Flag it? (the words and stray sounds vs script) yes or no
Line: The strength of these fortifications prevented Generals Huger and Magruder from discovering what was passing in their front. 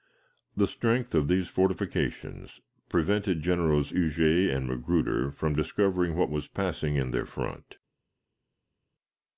no